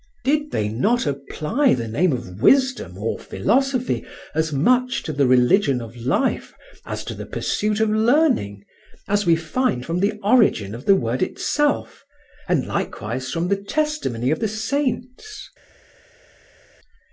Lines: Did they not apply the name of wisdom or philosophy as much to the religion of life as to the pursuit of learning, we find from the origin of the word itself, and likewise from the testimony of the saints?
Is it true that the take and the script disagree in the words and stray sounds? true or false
true